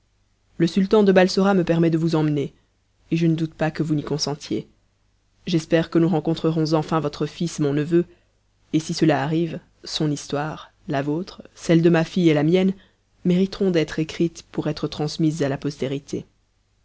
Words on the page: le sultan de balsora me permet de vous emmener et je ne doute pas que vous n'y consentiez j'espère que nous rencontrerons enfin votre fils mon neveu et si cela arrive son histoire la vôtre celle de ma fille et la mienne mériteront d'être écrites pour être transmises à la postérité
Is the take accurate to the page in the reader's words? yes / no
yes